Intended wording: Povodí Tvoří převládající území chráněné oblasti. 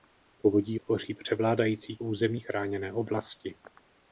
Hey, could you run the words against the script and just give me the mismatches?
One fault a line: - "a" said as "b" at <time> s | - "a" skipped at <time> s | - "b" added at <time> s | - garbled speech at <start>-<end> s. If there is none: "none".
none